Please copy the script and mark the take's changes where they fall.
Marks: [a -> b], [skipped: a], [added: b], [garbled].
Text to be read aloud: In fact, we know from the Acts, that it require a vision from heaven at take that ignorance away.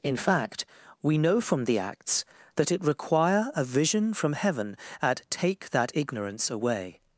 In fact, we know from the Acts, that it require a vision from heaven at take that ignorance away.